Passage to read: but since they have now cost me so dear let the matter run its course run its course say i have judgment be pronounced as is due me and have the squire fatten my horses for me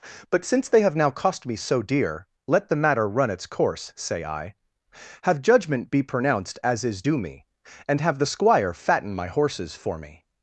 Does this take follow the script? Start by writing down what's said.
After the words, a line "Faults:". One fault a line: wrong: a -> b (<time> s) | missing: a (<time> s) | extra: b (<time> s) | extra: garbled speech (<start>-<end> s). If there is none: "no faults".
but since they have now cost me so dear let the matter run its course say i have judgment be pronounced as is due me and have the squire fatten my horses for me
Faults:
missing: run its course (3.9 s)